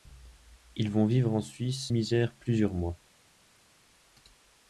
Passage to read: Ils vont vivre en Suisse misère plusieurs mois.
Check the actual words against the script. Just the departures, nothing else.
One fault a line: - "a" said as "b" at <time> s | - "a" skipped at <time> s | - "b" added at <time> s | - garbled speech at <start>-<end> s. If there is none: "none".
none